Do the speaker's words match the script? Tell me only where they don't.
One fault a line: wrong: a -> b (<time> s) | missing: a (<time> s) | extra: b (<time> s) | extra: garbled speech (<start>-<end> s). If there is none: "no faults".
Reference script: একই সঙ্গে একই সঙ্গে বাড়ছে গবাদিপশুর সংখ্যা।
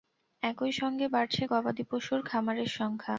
missing: একই সঙ্গে (1.1 s)
extra: খামারের (2.2 s)